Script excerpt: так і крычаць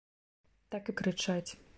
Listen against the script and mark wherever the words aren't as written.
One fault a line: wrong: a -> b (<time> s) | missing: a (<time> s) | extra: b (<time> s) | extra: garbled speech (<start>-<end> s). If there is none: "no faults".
no faults